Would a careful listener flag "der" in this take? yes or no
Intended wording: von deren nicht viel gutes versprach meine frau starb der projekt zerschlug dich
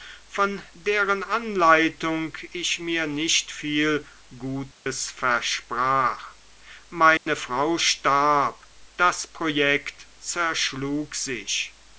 yes